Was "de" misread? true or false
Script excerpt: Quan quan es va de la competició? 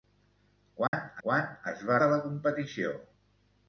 false